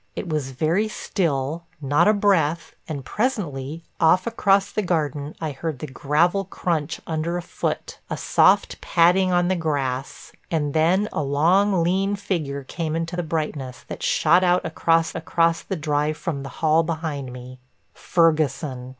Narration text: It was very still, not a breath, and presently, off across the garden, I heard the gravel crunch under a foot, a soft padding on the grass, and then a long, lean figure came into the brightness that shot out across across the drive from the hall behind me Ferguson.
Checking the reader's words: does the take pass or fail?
pass